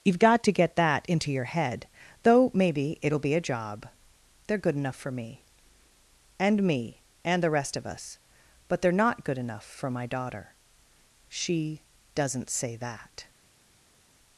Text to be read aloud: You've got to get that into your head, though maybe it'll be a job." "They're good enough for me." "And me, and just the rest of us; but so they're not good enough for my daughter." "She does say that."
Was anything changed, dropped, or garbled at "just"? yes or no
yes